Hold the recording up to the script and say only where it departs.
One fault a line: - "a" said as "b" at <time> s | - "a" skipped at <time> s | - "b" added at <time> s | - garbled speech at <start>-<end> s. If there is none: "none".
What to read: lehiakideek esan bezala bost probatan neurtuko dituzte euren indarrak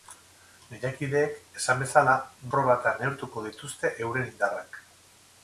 - "bost" skipped at 2.1 s